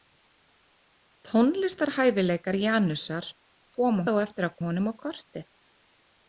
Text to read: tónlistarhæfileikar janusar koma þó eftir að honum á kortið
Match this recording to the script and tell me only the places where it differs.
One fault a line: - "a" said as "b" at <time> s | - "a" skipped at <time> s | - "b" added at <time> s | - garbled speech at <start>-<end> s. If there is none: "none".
none